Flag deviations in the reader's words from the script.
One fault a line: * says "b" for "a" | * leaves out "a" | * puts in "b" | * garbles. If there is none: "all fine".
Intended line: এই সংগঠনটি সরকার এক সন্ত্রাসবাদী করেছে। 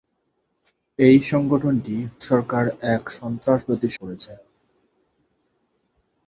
all fine